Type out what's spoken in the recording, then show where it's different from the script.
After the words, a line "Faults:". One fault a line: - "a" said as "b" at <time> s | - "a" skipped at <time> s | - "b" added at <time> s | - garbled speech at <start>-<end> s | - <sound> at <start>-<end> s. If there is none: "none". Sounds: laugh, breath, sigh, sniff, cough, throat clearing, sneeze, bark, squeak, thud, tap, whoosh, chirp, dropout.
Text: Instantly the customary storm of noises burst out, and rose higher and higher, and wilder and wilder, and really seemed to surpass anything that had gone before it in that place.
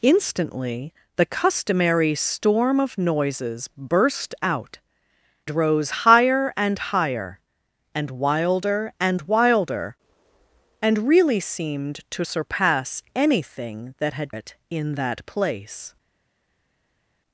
Instantly the customary storm of noises burst out, rose higher and higher, and wilder and wilder, and really seemed to surpass anything that had it in that place.
Faults:
- "and" skipped at 4.8 s
- "gone before" skipped at 14.4 s